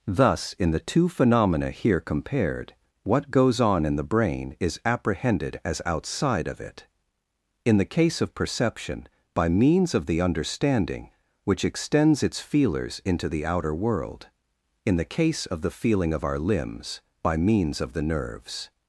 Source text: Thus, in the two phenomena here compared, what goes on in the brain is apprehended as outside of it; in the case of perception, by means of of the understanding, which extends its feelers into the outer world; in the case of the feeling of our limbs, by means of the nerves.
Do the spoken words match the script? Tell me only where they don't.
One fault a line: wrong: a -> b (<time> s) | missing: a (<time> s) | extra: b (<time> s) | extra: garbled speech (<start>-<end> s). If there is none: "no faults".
missing: of (10.1 s)